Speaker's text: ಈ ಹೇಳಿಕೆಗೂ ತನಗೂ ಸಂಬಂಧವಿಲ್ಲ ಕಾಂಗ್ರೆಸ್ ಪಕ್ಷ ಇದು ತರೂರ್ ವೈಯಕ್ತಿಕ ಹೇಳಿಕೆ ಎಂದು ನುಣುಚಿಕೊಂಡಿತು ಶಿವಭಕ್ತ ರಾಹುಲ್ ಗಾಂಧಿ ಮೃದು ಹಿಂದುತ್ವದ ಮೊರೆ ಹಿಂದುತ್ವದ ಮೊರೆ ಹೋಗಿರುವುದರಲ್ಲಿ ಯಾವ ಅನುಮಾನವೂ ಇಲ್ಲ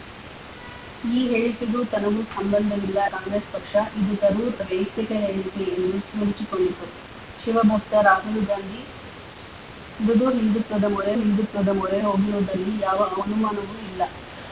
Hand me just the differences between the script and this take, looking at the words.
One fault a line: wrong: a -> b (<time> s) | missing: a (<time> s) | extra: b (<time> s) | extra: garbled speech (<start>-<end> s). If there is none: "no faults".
no faults